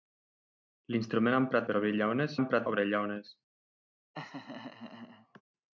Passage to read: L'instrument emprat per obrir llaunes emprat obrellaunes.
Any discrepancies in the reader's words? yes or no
no